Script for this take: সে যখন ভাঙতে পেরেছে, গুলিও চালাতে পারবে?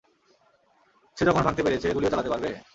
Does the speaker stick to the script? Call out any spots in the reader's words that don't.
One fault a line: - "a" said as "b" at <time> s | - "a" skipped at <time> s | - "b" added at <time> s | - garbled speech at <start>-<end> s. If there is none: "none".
none